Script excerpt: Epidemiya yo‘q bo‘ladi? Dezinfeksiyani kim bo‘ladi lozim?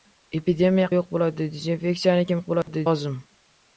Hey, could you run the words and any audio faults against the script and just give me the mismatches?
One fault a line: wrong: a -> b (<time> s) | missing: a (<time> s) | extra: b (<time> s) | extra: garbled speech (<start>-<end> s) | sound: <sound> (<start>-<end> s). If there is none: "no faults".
sound: dropout (2.6-2.7 s)